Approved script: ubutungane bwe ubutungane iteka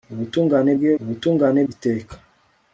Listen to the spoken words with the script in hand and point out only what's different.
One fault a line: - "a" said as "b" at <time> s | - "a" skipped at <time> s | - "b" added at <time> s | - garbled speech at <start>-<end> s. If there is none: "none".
none